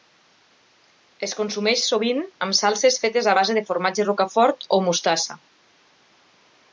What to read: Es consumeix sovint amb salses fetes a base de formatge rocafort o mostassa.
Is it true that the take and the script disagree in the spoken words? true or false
false